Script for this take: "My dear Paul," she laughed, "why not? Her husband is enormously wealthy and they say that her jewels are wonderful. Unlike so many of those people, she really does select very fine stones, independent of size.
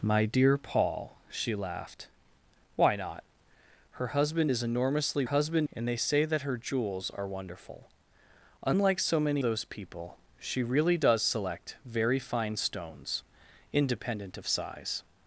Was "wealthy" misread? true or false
true